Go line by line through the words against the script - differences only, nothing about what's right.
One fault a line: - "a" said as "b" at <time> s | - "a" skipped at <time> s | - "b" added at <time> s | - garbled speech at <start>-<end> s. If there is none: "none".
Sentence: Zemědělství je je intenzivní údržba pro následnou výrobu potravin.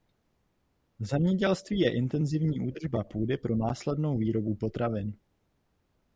- "je" skipped at 1.9 s
- "půdy" added at 3.0 s